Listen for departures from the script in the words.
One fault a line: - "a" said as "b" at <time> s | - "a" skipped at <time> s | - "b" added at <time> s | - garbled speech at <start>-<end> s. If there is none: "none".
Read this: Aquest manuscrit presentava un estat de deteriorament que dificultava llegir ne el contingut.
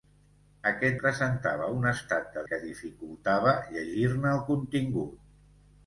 - "manuscrit" skipped at 0.9 s
- "deteriorament" skipped at 2.4 s